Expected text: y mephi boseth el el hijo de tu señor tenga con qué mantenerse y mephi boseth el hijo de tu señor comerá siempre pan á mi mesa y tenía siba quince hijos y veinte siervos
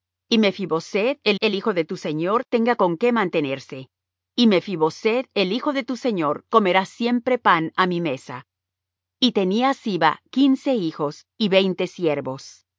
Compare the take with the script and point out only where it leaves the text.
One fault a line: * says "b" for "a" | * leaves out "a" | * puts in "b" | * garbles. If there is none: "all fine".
all fine